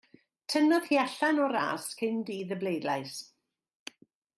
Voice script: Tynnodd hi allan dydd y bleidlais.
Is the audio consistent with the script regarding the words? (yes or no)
no